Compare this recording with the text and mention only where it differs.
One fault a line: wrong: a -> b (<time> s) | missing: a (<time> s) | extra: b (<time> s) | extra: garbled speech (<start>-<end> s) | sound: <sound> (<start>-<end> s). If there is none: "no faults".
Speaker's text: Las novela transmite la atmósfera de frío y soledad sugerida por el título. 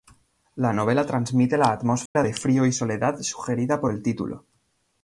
wrong: Las -> La (0.6 s)
sound: dropout (2.1-2.2 s)